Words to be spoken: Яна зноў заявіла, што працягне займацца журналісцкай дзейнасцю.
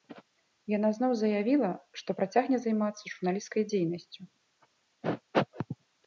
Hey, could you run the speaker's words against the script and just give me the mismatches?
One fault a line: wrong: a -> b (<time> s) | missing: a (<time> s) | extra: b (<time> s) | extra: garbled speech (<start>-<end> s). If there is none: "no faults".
no faults